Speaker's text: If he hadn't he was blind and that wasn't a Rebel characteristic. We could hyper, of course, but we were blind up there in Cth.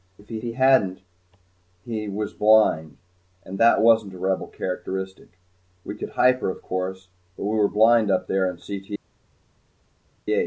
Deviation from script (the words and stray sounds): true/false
true